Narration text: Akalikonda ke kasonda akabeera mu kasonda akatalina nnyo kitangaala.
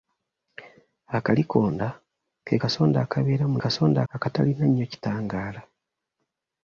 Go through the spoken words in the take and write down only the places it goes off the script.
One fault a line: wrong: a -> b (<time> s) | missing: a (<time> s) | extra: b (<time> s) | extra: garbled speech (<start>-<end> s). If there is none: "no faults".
no faults